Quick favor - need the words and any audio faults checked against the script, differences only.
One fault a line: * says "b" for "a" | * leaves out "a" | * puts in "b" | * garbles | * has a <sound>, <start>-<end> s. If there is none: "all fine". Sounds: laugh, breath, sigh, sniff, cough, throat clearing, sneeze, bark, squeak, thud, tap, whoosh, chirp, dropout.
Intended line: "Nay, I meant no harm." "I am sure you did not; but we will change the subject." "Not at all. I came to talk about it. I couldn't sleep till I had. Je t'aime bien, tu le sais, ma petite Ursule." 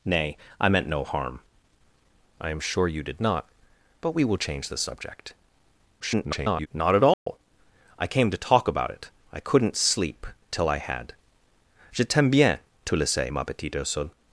* garbles
* has a dropout, 7.1-7.3 s